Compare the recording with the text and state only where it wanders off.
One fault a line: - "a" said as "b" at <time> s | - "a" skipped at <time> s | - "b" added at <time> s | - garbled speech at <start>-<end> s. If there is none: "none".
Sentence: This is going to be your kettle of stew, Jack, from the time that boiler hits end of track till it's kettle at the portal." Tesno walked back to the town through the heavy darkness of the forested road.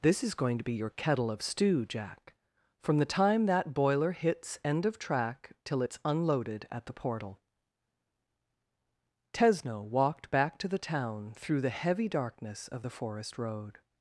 - "kettle" said as "unloaded" at 6.0 s
- "forested" said as "forest" at 12.9 s